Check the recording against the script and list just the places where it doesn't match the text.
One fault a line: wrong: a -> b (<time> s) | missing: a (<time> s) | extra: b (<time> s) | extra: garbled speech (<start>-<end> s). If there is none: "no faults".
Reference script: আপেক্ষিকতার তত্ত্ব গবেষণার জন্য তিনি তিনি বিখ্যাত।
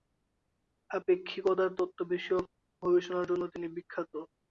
extra: বিষয়ক (2.1 s)
missing: তিনি (3.7 s)